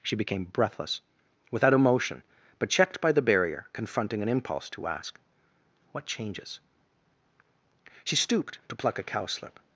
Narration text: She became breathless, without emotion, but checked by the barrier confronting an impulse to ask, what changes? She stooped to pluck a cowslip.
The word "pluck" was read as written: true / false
true